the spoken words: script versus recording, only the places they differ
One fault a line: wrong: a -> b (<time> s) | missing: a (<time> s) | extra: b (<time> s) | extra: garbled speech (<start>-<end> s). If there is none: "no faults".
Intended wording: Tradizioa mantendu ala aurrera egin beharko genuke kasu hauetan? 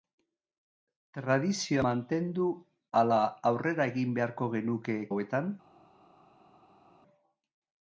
missing: kasu (5.0 s)